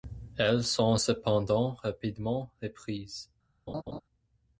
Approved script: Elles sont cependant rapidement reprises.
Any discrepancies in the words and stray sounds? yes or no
yes